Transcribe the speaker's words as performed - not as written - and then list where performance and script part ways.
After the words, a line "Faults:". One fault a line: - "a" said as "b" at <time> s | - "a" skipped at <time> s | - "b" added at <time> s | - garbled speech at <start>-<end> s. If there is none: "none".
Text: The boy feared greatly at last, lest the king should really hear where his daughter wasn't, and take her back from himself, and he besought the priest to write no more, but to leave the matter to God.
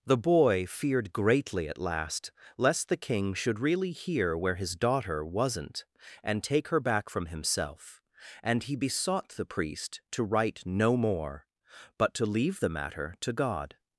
The boy feared greatly at last, lest the king should really hear where his daughter wasn't, and take her back from himself, and he besought the priest to write no more, but to leave the matter to God.
Faults:
none